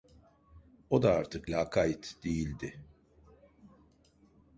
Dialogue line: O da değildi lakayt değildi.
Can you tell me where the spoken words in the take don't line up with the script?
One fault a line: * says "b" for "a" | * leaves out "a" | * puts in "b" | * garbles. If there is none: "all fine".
* says "artık" for "değildi"